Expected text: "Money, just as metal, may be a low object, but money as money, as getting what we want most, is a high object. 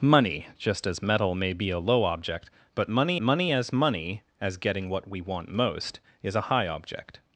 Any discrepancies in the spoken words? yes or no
yes